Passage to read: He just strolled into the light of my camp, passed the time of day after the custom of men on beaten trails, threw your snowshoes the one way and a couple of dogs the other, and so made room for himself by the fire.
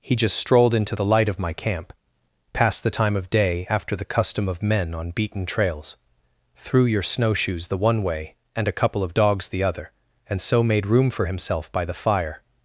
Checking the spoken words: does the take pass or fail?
pass